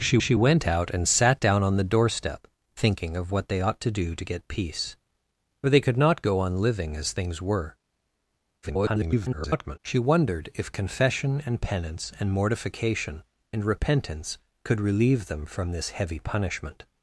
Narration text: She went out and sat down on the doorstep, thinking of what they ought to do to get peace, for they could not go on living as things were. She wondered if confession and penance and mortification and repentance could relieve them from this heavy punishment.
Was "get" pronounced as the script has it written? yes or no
yes